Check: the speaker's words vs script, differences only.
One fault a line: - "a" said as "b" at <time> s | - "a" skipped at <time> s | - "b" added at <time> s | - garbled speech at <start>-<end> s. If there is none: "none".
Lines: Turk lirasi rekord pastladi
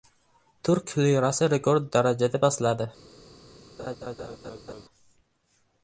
- "darajada" added at 2.0 s